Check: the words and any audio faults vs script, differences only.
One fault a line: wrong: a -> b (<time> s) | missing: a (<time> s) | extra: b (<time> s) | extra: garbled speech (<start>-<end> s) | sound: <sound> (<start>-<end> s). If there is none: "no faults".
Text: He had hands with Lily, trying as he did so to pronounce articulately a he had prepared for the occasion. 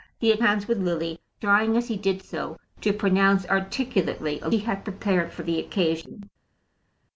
no faults